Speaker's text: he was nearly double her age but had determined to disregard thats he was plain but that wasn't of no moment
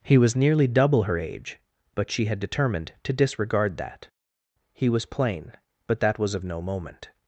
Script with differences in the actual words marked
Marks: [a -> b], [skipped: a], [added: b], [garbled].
he was nearly double her age but [added: she] had determined to disregard [thats -> that] he was plain but that [wasn't -> was] of no moment